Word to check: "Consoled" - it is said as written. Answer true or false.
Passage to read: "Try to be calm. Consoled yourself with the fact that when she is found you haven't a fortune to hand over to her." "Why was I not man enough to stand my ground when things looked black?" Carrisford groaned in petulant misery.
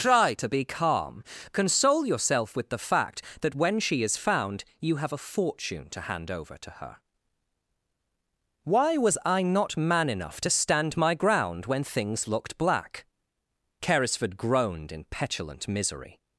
false